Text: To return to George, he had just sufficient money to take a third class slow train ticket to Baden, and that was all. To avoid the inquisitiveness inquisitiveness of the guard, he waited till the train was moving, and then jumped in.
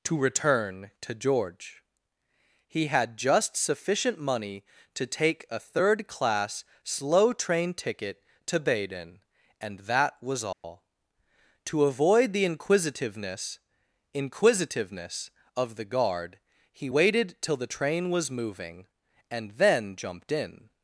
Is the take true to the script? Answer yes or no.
yes